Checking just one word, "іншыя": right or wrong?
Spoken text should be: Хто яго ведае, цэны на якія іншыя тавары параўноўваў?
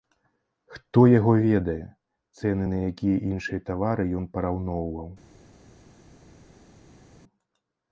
right